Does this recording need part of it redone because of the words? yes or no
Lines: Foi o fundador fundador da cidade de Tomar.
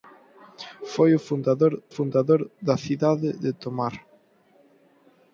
no